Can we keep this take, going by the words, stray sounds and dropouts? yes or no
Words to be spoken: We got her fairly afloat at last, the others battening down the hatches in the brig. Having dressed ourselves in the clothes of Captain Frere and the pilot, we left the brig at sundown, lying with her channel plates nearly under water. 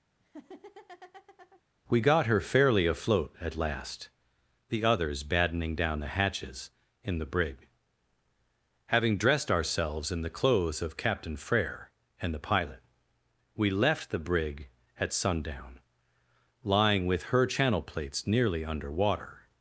no